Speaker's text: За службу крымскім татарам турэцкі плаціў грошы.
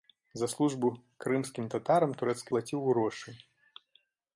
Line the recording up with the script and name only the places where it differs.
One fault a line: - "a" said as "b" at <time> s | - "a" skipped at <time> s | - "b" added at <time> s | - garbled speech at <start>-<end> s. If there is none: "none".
none